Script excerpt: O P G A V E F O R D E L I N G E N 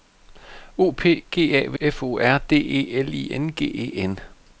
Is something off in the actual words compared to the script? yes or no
yes